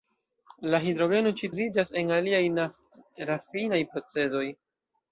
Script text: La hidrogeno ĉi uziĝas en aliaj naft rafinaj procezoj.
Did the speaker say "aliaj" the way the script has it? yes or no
yes